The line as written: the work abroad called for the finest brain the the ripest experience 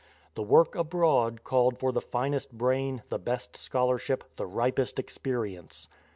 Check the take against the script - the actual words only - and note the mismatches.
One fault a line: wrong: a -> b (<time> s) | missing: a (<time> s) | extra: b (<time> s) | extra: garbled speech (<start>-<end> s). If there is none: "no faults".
extra: best scholarship (3.2 s)